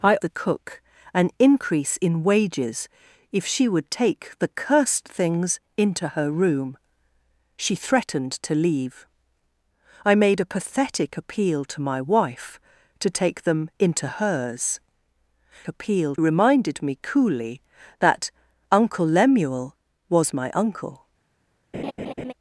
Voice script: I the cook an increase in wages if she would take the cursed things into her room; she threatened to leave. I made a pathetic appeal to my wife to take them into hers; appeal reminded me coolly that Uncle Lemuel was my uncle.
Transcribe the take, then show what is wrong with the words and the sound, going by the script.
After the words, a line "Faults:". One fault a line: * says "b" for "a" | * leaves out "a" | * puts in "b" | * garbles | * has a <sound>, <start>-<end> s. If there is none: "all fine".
I the cook an increase in wages if she would take the cursed things into her room; she threatened to leave. I made a pathetic appeal to my wife to take them into hers; appeal reminded me coolly that Uncle Lemuel was my uncle.
Faults:
* has a laugh, 21.7-22.3 s